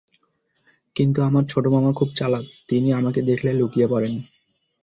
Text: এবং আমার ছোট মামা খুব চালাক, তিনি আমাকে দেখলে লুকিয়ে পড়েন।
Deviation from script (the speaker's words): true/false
true